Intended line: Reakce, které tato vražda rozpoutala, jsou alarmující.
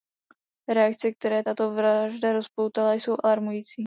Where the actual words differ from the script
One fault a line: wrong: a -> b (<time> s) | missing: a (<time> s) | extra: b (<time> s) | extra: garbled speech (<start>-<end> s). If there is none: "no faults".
no faults